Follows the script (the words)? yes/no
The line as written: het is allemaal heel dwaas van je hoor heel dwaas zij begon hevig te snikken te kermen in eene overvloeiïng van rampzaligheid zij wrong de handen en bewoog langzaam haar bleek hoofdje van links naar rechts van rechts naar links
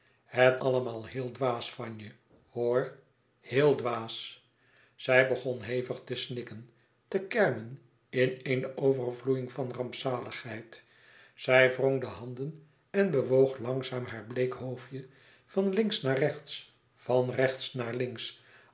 no